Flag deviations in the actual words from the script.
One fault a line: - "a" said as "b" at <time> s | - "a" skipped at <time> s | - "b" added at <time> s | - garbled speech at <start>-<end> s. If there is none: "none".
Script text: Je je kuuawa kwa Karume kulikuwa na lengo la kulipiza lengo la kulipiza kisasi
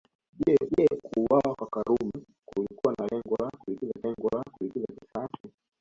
none